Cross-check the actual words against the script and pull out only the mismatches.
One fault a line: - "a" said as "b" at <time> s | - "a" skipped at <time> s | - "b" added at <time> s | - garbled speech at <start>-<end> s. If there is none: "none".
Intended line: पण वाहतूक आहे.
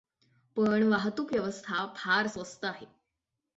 - "व्यवस्था फार स्वस्त" added at 1.3 s